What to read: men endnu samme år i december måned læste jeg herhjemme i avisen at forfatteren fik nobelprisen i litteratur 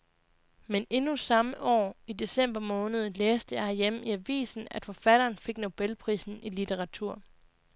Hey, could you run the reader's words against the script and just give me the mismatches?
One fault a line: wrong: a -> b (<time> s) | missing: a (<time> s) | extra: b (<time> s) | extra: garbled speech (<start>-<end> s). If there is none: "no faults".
no faults